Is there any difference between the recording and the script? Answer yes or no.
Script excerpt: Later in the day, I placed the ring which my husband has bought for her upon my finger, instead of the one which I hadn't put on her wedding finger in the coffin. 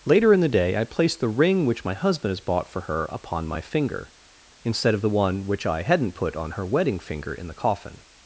no